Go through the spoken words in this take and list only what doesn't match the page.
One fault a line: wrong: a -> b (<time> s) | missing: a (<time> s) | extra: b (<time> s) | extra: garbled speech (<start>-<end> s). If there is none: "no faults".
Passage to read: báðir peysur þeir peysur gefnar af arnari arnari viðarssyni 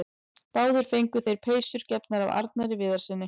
wrong: peysur -> fengu (0.9 s)
missing: arnari (2.8 s)